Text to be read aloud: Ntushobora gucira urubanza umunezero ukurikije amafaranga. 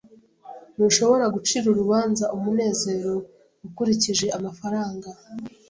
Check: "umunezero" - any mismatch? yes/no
no